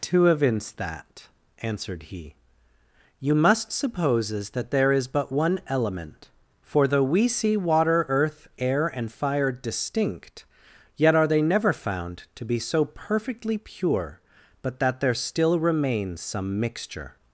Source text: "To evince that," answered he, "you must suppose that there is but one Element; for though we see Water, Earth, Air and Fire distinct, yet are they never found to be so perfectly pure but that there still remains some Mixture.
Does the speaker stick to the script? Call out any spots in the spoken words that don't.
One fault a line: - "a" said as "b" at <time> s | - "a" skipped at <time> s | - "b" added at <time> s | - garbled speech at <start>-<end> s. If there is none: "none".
- "suppose" said as "supposes" at 3.7 s